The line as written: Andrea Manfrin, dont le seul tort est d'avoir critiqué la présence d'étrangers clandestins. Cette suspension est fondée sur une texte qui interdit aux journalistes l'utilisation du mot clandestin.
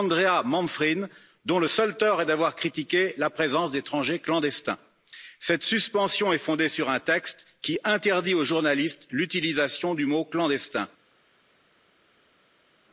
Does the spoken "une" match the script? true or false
false